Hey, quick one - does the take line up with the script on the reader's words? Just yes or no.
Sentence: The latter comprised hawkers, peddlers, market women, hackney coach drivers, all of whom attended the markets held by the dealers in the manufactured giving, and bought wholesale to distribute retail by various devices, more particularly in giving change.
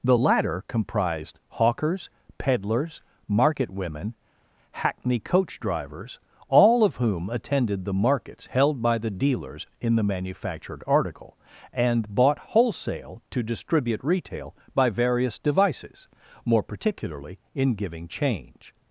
no